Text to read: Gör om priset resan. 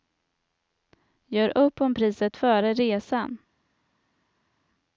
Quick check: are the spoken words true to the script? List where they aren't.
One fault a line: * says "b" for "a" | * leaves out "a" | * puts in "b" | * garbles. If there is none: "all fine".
* puts in "upp"
* puts in "före"